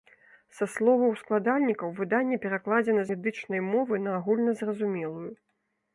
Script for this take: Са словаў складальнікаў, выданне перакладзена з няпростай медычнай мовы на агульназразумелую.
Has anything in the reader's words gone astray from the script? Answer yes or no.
yes